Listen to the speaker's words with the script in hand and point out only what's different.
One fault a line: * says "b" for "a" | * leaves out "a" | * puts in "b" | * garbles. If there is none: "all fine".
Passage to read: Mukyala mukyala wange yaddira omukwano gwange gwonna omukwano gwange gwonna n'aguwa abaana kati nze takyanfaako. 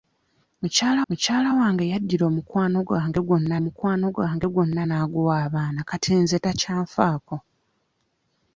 all fine